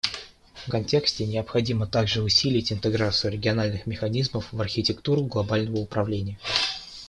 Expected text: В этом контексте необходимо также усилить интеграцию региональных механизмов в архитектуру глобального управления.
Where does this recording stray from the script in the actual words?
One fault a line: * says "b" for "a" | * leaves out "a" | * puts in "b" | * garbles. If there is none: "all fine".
* leaves out "этом"